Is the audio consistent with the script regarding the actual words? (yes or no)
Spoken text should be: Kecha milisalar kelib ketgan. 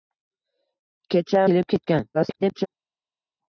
no